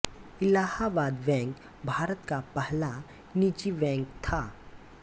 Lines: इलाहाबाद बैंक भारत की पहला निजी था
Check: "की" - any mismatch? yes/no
yes